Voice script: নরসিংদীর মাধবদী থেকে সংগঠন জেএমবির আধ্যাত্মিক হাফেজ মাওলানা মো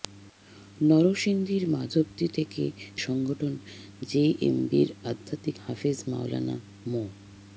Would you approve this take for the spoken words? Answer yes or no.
yes